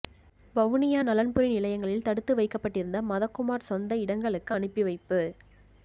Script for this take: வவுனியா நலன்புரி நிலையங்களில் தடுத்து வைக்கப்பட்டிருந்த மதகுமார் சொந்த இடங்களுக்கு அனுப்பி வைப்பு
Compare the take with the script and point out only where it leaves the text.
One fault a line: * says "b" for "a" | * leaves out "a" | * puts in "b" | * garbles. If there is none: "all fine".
all fine